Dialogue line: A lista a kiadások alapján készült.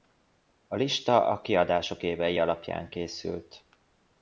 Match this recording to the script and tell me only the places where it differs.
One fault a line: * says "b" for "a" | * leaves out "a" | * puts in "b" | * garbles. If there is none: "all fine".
* puts in "évei"